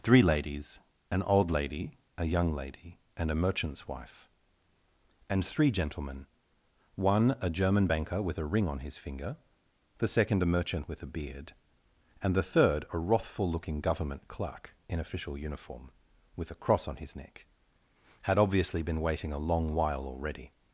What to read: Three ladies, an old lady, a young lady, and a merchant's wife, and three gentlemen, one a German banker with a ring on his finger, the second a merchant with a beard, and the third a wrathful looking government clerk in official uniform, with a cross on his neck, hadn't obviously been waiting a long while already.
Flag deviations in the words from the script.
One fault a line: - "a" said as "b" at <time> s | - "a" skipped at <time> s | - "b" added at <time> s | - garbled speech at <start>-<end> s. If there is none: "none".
- "hadn't" said as "had" at 18.2 s